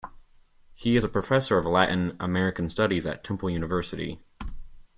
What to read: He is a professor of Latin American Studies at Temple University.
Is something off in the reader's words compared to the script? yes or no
no